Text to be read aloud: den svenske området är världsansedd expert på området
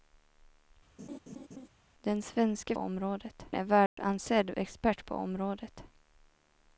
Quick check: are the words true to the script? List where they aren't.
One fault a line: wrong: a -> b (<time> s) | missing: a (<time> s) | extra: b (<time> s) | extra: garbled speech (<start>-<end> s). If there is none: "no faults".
no faults